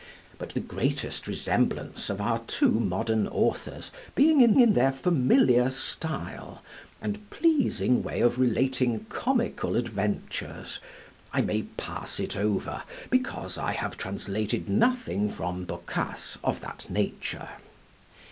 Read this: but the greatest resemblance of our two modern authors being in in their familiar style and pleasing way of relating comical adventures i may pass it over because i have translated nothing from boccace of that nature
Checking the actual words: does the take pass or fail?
pass